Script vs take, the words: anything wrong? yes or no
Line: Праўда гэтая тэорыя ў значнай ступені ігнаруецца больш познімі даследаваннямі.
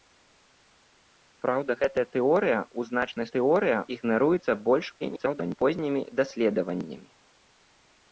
yes